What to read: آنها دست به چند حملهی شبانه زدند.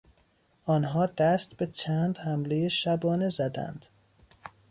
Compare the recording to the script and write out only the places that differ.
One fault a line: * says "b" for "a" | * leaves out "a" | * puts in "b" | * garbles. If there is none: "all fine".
all fine